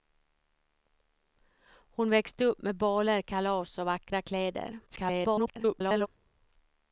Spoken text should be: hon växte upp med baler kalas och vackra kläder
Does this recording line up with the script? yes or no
no